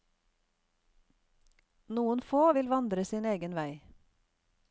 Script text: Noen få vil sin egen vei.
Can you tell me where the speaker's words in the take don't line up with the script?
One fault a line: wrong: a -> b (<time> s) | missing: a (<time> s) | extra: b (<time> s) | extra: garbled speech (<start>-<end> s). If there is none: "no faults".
extra: vandre (2.7 s)